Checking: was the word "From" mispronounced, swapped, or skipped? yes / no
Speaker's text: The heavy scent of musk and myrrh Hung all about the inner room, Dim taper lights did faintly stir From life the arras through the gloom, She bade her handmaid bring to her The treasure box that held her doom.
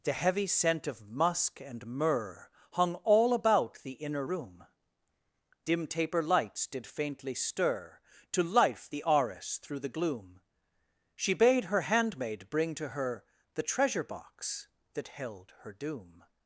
yes